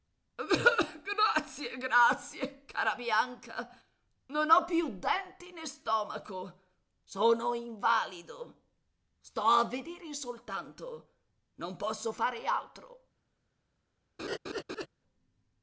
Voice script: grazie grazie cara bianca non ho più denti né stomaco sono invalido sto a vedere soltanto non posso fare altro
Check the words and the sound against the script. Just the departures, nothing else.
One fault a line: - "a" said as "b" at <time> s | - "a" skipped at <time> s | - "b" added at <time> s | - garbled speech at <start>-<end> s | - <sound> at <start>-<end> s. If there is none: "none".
- laugh at 14.2-14.9 s